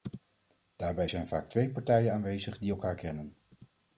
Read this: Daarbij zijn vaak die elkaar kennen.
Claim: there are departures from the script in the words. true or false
true